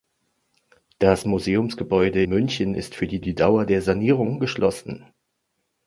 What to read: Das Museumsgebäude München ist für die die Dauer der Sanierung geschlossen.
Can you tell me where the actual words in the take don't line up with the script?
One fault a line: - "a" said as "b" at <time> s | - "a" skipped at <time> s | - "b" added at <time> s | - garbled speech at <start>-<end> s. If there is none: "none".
none